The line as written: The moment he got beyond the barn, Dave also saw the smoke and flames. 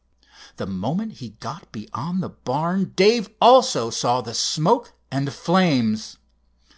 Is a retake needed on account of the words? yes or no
no